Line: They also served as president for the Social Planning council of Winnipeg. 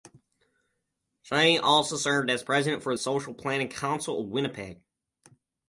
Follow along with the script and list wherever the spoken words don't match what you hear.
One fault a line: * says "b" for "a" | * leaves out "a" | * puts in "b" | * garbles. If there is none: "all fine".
* says "She" for "They"